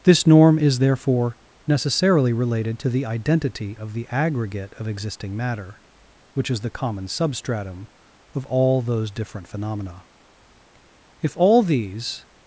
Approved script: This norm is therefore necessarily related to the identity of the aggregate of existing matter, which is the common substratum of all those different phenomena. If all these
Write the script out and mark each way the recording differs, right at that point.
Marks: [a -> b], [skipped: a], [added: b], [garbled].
This norm is therefore necessarily related to the identity of the aggregate of existing matter, which is the common substratum of all those different phenomena. If all these